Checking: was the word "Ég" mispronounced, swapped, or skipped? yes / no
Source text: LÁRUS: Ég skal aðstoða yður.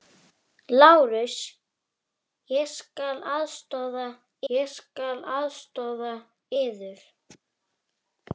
no